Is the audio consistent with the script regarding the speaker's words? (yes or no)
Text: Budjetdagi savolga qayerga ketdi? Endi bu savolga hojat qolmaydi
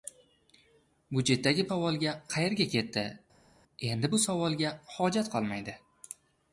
yes